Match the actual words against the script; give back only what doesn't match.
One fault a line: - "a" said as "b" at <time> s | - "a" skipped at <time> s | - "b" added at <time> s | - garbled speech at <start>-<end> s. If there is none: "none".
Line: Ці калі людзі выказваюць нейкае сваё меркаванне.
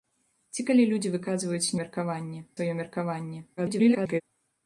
- "нейкае" said as "меркаванне" at 1.8 s
- garbled speech at 3.6-4.2 s